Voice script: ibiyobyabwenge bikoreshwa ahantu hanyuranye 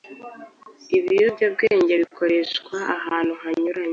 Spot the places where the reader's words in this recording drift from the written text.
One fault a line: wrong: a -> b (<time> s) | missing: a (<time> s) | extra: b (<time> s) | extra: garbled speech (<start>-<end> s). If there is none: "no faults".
no faults